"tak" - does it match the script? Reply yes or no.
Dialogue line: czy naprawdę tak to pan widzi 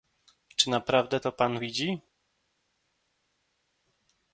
no